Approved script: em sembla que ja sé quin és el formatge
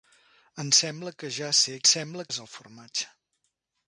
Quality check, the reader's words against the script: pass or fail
fail